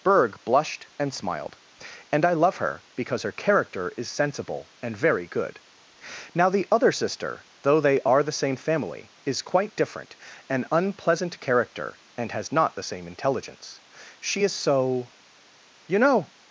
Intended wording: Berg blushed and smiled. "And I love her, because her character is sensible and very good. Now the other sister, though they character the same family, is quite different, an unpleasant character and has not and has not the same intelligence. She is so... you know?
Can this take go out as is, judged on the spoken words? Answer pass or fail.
fail